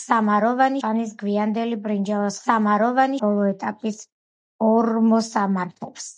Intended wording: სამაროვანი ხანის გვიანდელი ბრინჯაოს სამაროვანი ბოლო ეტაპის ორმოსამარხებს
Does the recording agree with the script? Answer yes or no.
yes